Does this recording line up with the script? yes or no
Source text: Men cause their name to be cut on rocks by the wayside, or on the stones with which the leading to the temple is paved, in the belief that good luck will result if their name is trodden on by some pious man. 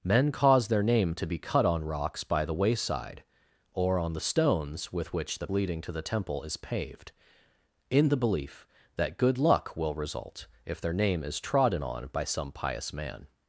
yes